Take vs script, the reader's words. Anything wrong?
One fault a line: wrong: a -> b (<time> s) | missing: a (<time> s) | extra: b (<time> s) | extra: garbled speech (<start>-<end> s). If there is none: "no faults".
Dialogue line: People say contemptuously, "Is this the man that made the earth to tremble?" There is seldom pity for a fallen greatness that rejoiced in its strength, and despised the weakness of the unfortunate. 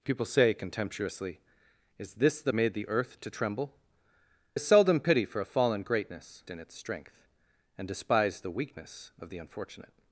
missing: man that (2.5 s)
missing: There (3.8 s)
missing: that rejoiced (6.4 s)